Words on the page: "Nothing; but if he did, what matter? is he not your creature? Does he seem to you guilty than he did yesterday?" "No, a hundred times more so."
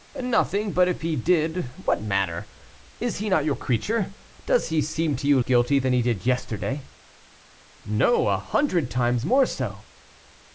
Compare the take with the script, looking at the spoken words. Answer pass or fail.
pass